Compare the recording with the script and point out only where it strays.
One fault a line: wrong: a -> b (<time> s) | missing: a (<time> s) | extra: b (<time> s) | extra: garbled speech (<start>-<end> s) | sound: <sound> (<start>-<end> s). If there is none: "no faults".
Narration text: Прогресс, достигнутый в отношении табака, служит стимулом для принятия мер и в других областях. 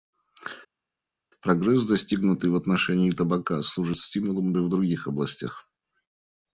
missing: для принятия мер (4.5 s)